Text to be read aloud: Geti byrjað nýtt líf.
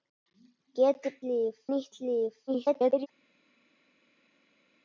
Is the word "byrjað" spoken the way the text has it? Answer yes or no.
no